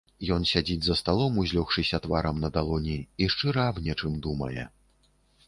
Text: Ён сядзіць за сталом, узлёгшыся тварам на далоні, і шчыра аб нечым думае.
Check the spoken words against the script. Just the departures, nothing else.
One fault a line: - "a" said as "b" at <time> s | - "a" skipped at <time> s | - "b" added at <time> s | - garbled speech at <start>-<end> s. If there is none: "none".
none